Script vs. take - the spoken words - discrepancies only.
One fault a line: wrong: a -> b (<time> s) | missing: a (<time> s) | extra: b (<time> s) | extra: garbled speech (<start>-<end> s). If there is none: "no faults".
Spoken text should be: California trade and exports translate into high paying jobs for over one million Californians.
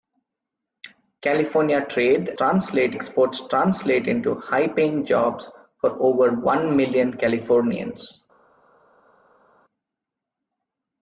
wrong: and -> translate (2.4 s)